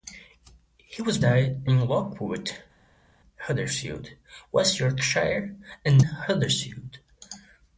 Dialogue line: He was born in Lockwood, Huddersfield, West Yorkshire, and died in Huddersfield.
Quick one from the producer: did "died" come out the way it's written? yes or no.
no